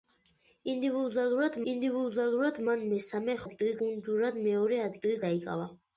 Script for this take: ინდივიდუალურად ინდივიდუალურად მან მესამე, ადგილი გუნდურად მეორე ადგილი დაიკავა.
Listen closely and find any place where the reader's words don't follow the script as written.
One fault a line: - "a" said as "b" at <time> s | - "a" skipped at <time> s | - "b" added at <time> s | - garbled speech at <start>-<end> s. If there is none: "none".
none